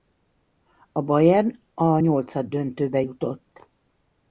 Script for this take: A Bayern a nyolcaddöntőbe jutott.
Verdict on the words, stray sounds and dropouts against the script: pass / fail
pass